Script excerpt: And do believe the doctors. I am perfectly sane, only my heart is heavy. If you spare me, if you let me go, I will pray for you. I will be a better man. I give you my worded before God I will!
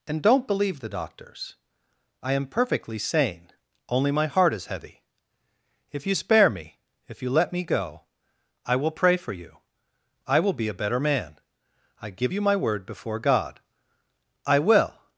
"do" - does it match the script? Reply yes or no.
no